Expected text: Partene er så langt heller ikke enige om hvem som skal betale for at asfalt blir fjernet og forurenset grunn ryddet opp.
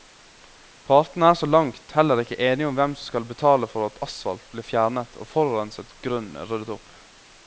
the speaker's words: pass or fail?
pass